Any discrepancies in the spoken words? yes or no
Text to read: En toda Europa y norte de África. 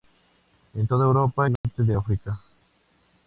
no